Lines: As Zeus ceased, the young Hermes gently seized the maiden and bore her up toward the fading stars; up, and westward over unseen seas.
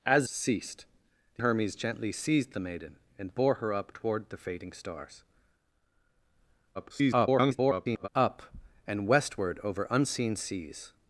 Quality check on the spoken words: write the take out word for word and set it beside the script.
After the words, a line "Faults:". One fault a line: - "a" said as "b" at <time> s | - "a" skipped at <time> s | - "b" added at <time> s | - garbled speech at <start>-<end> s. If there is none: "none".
As Ceased, the Hermes gently seized the maiden and bore her up toward the fading stars; [garbled] up, and westward over unseen seas.
Faults:
- "Zeus" skipped at 0.2 s
- "young" skipped at 1.4 s
- garbled speech at 6.7-8.1 s